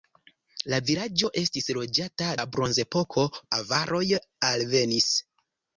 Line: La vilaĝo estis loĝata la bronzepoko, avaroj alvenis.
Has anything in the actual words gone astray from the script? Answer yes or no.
no